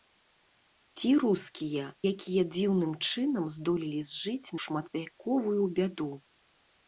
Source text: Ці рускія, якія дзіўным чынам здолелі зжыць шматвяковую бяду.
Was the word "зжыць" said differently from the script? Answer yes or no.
no